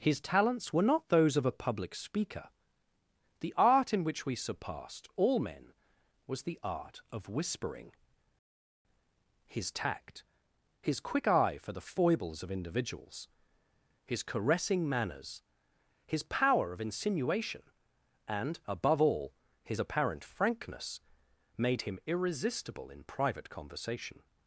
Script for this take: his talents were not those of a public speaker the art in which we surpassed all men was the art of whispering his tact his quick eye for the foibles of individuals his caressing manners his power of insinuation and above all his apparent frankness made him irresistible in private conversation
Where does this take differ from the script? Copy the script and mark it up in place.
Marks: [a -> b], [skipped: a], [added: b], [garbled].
his talents were not those of a public speaker the art in which we surpassed all men was the art of whispering his tact his quick eye for the foibles of individuals his caressing manners his power of insinuation and above all his apparent frankness made him irresistible in private conversation